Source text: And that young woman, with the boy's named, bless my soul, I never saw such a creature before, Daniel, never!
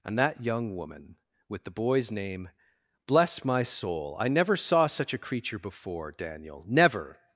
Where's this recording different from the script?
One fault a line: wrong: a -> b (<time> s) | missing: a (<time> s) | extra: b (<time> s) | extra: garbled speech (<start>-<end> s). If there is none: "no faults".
wrong: named -> name (2.1 s)